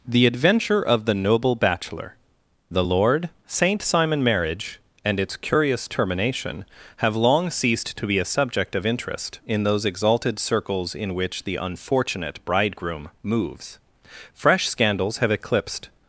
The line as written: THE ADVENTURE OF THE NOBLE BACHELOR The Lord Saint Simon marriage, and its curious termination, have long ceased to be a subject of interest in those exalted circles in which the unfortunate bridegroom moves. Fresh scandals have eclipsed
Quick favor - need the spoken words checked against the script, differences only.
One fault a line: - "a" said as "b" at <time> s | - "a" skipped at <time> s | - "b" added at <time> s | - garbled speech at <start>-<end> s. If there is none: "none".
none